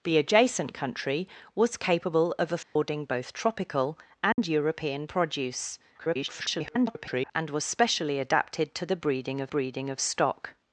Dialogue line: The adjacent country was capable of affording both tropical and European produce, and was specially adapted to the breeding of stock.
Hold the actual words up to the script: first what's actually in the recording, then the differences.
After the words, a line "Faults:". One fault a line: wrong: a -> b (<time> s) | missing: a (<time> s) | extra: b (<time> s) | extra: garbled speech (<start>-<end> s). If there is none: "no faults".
The adjacent country was capable of affording both tropical and European produce, [garbled] and was specially adapted to the breeding of breeding of stock.
Faults:
extra: garbled speech (6.0-7.3 s)
extra: breeding of (9.5 s)